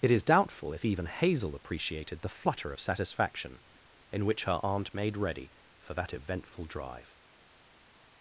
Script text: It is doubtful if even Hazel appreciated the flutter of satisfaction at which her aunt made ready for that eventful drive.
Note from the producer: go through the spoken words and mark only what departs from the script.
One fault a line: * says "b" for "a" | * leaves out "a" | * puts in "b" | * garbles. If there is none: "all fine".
* says "in" for "at"